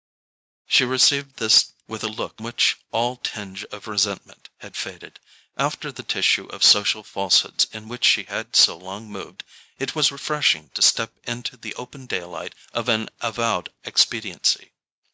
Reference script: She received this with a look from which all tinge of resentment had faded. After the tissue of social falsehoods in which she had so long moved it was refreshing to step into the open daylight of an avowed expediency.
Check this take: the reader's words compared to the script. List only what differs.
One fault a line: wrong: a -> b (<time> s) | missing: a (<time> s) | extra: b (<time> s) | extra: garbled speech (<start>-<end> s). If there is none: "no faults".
missing: from (2.4 s)